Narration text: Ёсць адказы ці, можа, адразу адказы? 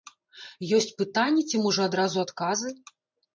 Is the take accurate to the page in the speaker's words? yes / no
no